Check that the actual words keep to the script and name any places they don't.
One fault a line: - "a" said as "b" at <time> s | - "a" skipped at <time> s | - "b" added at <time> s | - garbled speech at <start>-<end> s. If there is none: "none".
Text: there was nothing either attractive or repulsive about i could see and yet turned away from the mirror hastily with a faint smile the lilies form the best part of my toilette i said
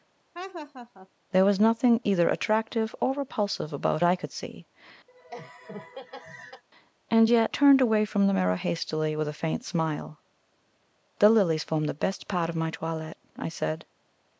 none